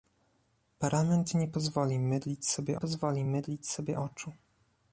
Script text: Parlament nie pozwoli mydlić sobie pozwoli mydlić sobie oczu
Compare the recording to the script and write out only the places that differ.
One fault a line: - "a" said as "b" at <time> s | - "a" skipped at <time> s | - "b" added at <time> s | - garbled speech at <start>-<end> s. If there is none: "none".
none